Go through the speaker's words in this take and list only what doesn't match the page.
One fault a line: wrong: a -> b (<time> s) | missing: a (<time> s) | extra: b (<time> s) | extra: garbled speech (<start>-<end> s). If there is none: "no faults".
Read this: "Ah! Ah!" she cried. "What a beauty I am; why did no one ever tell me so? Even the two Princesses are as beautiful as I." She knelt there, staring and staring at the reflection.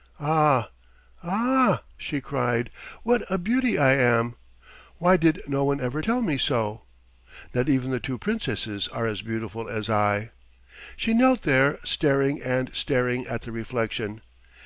extra: Not (7.5 s)